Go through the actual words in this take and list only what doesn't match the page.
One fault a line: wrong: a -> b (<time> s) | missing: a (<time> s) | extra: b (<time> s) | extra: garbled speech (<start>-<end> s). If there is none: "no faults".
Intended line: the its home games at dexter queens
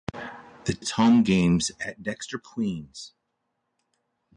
no faults